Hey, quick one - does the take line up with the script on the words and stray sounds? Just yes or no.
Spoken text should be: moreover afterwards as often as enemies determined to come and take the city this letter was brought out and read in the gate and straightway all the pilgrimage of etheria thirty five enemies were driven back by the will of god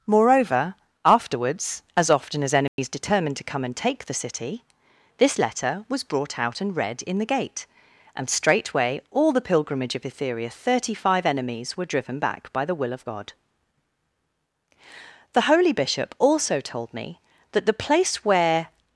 no